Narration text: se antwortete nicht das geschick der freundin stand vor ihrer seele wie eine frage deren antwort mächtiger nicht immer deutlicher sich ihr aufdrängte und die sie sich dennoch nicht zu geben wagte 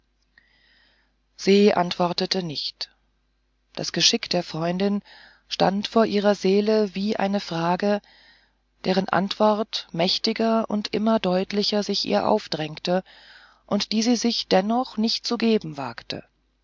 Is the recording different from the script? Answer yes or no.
yes